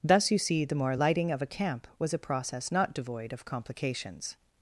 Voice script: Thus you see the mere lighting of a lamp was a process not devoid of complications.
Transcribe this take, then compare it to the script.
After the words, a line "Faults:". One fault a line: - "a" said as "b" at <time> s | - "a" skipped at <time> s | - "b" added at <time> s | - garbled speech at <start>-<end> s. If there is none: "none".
Thus you see the more lighting of a camp was a process not devoid of complications.
Faults:
- "mere" said as "more" at 0.8 s
- "lamp" said as "camp" at 1.5 s